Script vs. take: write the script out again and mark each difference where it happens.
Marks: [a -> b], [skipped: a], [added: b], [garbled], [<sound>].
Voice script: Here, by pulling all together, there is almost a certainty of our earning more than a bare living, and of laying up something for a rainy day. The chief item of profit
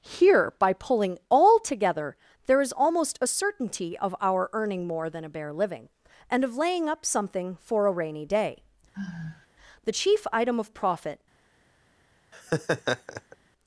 Here, by pulling all together, there is almost a certainty of our earning more than a bare living, and of laying up something for a rainy day. [sigh] The chief item of profit [laugh]